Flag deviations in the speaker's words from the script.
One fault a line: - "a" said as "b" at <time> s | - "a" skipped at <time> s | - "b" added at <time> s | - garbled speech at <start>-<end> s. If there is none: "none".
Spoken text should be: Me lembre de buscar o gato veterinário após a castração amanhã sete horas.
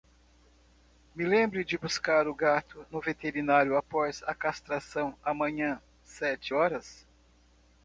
- "no" added at 2.9 s